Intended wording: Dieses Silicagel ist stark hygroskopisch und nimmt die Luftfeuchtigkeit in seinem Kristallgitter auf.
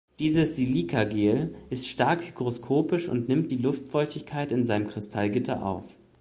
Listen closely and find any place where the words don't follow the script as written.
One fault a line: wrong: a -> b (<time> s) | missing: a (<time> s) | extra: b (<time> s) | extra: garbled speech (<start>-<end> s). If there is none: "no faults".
no faults